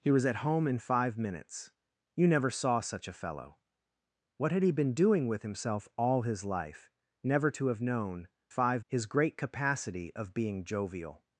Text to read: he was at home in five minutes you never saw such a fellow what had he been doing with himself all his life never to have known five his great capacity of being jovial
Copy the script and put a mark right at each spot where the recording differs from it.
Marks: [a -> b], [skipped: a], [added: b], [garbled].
he was at home in five minutes you never saw such a fellow what had he been doing with himself all his life never to have known five his great capacity of being jovial